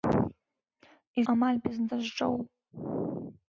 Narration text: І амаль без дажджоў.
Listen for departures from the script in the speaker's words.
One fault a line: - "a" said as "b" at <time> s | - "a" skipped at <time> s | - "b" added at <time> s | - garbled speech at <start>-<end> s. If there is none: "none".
none